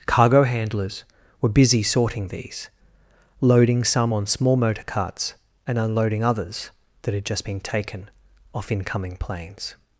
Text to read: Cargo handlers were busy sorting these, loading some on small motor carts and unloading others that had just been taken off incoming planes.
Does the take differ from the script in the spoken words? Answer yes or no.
no